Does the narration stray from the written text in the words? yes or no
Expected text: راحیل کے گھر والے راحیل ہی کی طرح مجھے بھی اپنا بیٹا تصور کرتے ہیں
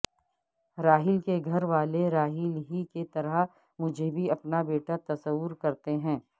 no